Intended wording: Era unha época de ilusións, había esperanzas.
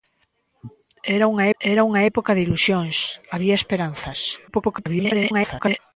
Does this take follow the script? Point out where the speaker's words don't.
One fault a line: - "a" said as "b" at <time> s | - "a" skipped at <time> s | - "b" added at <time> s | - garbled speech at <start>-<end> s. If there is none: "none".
- "era unha" added at 1.6 s
- garbled speech at 4.5-5.8 s